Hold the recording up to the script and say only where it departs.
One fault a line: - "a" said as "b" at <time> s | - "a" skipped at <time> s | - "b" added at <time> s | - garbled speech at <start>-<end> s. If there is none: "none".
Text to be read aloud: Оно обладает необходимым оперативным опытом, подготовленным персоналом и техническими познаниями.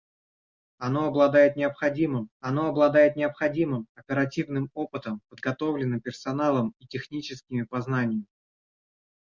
- "оно обладает необходимым" added at 2.4 s